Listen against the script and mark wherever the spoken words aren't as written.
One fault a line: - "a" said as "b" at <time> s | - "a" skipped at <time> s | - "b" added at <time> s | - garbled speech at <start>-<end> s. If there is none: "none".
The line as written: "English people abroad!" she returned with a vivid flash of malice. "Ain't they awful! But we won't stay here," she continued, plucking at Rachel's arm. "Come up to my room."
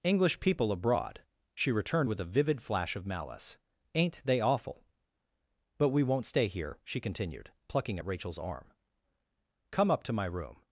none